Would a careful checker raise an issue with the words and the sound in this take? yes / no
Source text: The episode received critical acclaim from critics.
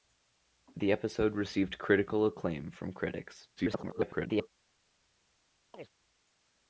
yes